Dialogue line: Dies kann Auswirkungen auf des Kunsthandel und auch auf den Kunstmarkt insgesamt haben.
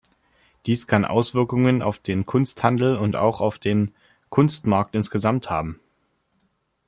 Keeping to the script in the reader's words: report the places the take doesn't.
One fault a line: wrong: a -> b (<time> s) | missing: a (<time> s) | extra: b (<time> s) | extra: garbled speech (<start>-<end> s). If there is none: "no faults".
wrong: des -> den (2.0 s)